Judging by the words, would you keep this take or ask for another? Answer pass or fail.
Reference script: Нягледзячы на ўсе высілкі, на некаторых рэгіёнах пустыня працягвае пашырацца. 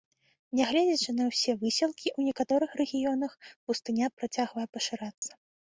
fail